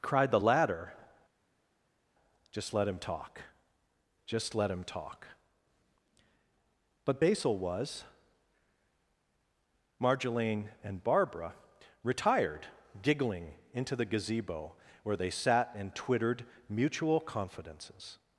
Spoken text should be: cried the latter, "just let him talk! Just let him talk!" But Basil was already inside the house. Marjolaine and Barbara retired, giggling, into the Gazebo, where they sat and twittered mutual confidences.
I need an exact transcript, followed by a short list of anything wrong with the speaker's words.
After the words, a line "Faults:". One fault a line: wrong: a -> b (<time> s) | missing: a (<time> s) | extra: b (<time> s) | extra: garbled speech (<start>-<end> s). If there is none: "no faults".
cried the latter, "just let him talk! Just let him talk!" But Basil was. Marjolaine and Barbara retired, giggling, into the Gazebo, where they sat and twittered mutual confidences.
Faults:
missing: already inside the house (8.0 s)